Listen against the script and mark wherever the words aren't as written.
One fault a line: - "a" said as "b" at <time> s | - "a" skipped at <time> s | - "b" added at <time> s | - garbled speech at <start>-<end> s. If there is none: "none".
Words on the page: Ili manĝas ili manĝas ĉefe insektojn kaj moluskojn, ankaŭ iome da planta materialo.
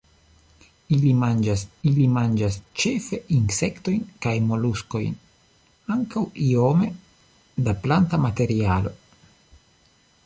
none